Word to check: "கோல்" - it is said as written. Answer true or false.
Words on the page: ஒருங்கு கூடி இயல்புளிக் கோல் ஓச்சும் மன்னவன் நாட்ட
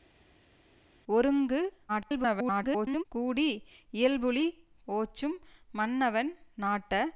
false